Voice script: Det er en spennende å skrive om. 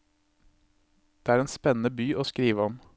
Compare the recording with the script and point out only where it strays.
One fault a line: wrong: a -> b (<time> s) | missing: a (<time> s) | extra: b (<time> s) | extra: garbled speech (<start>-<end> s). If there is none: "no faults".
extra: by (1.9 s)